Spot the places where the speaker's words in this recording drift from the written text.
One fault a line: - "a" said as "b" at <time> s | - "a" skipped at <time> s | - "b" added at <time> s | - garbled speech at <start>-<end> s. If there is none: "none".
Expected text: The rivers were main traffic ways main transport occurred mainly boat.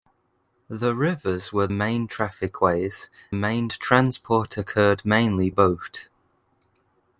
none